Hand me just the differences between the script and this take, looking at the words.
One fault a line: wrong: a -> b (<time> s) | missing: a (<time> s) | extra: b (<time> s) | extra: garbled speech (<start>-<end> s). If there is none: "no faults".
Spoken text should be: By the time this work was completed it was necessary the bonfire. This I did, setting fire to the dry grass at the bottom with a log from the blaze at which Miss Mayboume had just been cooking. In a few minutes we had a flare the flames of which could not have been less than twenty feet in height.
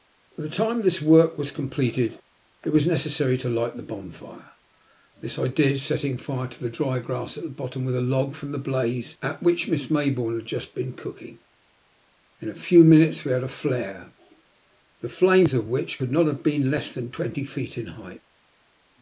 extra: to light (3.4 s)